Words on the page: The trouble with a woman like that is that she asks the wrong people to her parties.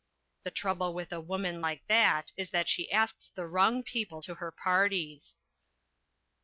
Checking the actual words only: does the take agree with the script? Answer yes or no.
yes